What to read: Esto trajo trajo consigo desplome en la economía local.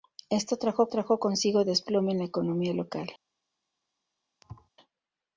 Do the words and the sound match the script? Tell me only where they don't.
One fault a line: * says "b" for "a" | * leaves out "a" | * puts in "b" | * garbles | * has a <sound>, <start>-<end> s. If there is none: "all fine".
* has a thud, 4.4-4.7 s